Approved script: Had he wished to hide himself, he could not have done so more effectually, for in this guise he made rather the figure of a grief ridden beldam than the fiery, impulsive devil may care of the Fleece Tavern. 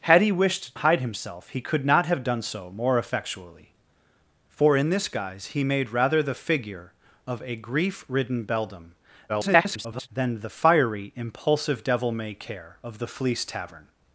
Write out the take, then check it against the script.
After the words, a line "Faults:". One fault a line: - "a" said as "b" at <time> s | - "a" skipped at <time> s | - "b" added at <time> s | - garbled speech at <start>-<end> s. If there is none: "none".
Had he wished hide himself, he could not have done so more effectually, for in this guise he made rather the figure of a grief ridden beldam [garbled] than the fiery, impulsive devil may care of the Fleece Tavern.
Faults:
- "to" skipped at 0.8 s
- garbled speech at 9.3-10.1 s